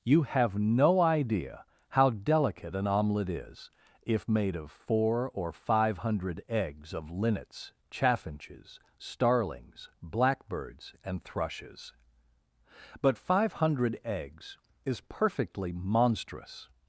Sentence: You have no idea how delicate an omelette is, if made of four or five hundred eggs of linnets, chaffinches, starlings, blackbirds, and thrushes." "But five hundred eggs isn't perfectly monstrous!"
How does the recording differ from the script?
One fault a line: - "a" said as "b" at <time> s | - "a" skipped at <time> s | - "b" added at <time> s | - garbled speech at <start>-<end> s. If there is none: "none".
- "isn't" said as "is" at 14.9 s